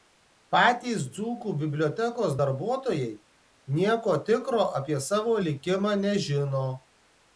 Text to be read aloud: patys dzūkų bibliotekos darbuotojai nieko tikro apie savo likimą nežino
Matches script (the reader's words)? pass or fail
pass